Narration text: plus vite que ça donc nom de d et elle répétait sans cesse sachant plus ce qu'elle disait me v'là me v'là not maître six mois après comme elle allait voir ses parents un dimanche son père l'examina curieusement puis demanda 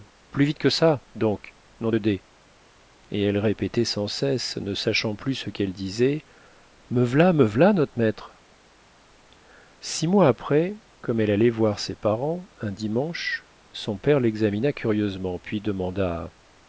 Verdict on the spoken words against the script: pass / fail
fail